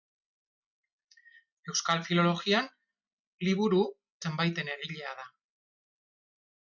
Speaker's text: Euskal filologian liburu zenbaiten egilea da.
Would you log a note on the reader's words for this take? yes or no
no